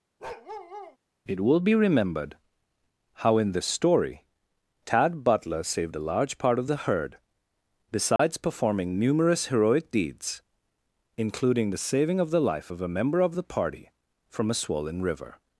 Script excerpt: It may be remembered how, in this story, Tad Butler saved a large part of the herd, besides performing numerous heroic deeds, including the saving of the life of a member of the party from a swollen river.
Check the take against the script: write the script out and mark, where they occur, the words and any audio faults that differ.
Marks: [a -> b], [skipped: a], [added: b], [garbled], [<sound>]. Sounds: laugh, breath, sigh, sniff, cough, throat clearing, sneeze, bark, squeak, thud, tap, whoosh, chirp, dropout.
[bark] It [may -> will] be remembered how, in this story, Tad Butler saved a large part of the herd, besides [dropout] performing numerous heroic deeds, including the saving of the life of a member of the party from a swollen river.